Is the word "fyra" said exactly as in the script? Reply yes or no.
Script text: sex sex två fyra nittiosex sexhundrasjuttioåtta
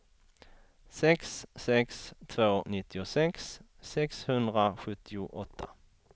no